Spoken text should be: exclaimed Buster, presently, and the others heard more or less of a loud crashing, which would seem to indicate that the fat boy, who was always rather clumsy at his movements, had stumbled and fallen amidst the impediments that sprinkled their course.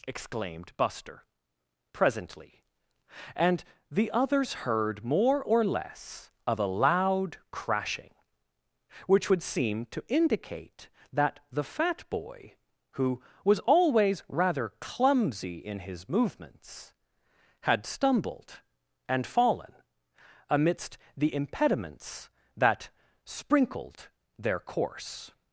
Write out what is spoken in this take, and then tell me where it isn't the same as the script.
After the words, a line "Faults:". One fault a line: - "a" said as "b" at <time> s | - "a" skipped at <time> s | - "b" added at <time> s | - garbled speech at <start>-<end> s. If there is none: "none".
exclaimed Buster, presently, and the others heard more or less of a loud crashing, which would seem to indicate that the fat boy, who was always rather clumsy in his movements, had stumbled and fallen amidst the impediments that sprinkled their course.
Faults:
- "at" said as "in" at 15.6 s